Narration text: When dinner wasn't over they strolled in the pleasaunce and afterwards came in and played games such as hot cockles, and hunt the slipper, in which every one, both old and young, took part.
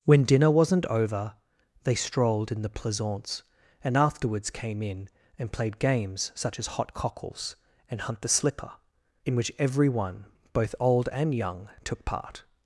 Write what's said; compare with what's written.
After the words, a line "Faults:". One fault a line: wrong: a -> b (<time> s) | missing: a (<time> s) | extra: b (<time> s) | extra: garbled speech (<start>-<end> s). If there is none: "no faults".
When dinner wasn't over they strolled in the pleasaunce and afterwards came in and played games such as hot cockles, and hunt the slipper, in which every one, both old and young, took part.
Faults:
no faults